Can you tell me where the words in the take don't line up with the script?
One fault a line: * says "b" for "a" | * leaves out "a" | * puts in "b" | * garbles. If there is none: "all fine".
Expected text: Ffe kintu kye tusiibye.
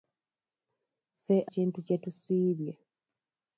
all fine